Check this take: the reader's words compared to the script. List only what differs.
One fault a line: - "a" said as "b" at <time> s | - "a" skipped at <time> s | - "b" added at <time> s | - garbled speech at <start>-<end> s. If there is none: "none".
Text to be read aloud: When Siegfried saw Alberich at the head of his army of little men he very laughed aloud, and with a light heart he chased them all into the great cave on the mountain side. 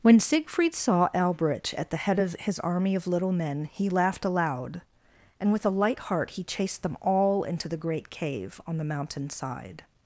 - "very" skipped at 3.9 s